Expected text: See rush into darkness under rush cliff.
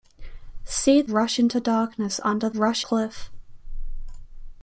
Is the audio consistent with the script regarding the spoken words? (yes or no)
yes